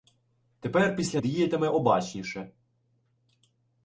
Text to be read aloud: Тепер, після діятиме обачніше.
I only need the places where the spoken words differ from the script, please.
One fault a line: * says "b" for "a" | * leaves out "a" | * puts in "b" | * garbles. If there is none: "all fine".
all fine